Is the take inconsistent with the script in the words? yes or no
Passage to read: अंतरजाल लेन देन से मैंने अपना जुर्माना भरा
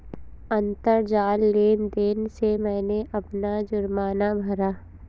no